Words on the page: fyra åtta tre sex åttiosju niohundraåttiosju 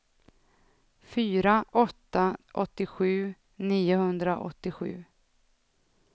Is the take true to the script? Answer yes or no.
no